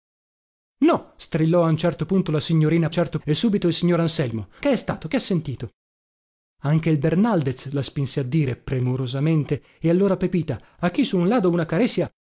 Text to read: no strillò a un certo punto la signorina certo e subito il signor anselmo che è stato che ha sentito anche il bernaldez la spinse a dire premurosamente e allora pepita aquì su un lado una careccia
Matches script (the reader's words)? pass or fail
pass